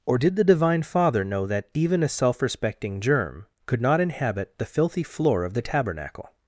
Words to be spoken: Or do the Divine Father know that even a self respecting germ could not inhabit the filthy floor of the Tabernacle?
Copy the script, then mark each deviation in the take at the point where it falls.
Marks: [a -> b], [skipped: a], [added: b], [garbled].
Or [do -> did] the Divine Father know that even a self respecting germ could not inhabit the filthy floor of the Tabernacle?